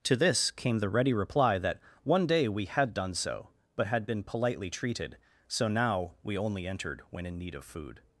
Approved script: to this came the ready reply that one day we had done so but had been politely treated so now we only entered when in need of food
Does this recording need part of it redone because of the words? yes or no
no